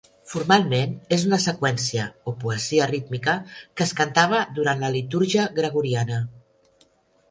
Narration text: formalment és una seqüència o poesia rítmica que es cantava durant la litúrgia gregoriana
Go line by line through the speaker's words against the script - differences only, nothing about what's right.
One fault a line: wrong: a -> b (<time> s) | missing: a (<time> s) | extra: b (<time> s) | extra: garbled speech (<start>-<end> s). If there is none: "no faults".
no faults